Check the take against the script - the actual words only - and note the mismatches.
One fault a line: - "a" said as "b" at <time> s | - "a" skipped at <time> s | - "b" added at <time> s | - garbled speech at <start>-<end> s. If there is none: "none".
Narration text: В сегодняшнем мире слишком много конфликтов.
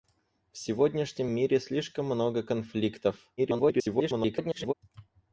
- garbled speech at 3.4-4.7 s